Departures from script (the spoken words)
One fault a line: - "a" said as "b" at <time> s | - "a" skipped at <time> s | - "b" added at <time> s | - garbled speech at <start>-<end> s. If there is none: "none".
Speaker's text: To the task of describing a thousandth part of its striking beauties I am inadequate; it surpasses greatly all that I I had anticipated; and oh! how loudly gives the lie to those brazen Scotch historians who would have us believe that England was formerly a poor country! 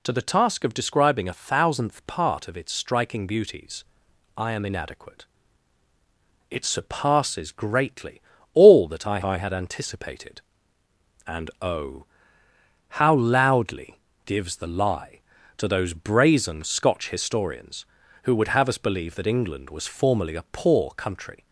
none